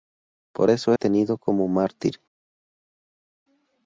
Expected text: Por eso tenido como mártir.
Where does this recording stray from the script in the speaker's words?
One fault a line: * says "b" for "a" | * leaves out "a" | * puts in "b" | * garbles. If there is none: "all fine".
all fine